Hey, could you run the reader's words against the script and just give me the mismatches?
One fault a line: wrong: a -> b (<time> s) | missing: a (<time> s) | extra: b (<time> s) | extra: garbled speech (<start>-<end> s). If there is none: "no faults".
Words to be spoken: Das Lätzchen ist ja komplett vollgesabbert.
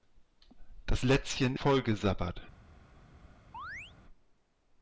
missing: ist ja komplett (1.6 s)